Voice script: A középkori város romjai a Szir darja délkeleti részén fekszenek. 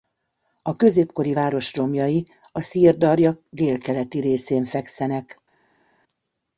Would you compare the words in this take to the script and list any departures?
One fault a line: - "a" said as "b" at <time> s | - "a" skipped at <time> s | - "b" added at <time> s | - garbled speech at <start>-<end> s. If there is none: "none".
none